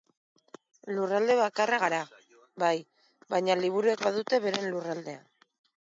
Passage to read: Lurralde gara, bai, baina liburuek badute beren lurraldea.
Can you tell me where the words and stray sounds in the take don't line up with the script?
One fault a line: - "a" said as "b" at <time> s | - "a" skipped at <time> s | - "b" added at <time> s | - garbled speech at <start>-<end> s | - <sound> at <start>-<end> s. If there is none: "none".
- "bakarra" added at 1.4 s